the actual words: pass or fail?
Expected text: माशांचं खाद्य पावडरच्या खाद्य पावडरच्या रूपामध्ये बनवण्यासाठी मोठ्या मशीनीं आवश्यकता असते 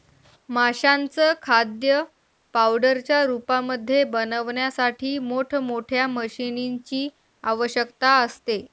fail